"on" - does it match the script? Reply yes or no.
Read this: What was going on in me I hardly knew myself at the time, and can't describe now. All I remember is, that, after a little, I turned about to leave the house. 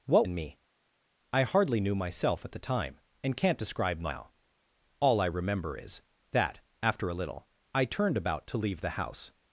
no